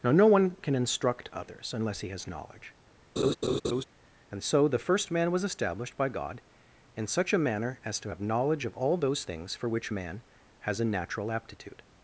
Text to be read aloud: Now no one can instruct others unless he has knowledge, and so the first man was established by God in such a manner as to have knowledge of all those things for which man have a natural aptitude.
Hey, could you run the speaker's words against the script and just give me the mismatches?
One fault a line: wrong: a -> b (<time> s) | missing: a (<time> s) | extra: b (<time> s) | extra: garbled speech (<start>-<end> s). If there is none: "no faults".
wrong: have -> has (10.6 s)